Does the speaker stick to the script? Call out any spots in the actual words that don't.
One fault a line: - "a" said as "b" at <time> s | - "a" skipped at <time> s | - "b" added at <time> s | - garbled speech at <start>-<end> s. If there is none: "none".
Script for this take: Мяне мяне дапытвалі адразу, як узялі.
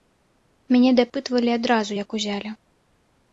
- "мяне" skipped at 0.9 s